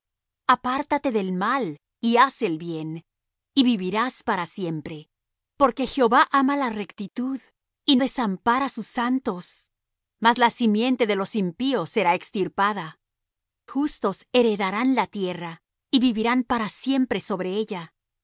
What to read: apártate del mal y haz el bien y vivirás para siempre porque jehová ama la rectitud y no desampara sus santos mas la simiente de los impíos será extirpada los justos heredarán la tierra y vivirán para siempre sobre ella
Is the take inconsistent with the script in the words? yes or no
yes